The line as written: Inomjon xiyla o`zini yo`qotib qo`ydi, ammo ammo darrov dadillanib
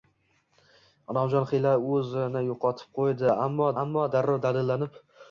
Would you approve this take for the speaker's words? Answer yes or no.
yes